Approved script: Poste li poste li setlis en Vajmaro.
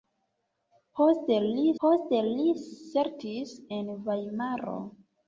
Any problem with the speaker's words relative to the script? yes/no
no